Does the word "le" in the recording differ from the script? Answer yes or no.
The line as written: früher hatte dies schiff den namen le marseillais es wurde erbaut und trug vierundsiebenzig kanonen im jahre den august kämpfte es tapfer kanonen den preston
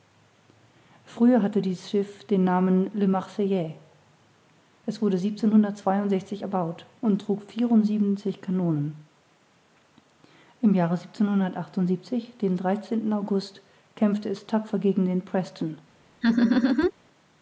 no